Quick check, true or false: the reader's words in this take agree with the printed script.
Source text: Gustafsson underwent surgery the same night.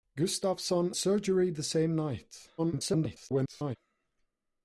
false